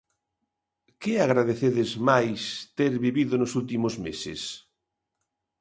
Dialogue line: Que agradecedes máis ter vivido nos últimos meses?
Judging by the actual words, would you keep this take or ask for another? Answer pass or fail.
pass